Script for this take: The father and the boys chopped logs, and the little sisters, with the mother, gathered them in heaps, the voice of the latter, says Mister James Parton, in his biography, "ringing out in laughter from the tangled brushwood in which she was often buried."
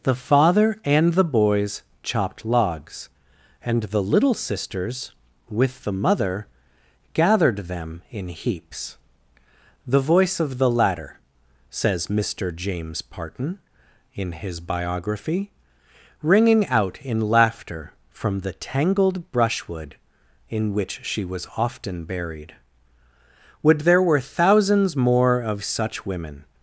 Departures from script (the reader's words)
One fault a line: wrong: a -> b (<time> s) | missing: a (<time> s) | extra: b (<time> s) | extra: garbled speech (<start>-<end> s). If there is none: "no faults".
extra: Would there were thousands more of such women (23.6 s)